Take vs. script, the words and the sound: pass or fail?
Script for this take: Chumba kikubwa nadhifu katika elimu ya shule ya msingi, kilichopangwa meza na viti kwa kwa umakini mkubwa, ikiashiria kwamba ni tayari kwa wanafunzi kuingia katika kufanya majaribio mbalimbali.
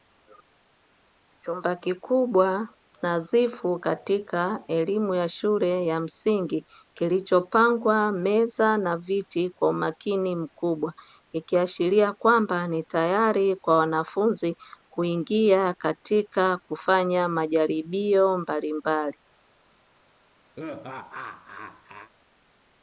fail